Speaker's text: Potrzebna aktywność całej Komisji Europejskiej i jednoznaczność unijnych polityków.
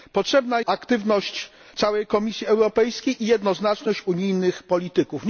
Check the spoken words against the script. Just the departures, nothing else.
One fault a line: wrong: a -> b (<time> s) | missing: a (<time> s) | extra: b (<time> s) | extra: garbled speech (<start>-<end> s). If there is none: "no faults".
no faults